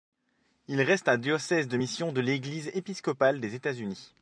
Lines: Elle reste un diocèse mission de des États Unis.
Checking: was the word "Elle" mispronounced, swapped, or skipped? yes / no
yes